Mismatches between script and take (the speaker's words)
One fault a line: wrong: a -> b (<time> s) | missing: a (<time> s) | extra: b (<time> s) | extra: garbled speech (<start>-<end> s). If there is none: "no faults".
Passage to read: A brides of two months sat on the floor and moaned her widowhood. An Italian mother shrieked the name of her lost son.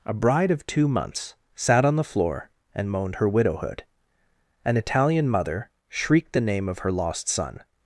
wrong: brides -> bride (0.1 s)